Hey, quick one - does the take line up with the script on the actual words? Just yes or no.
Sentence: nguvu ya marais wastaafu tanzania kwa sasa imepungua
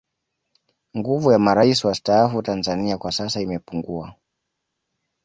yes